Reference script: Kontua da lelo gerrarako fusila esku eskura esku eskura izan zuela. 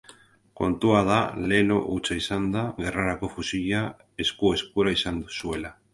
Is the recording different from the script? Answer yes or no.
yes